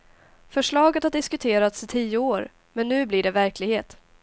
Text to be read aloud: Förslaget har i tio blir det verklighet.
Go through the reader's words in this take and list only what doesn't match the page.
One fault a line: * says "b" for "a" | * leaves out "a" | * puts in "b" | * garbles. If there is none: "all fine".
* puts in "diskuterats"
* puts in "år men nu"